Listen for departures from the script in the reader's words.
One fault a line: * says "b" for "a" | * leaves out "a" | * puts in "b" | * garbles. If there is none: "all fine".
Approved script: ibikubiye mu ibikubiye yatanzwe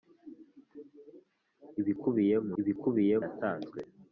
all fine